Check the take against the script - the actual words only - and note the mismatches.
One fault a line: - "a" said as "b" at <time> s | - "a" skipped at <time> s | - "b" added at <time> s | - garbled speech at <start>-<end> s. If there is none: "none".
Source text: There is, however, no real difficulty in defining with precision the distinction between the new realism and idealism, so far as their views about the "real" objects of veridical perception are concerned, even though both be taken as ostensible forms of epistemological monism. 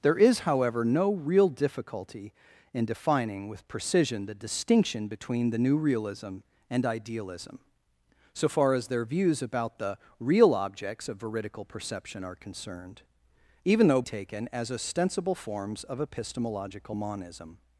- "both be" skipped at 14.0 s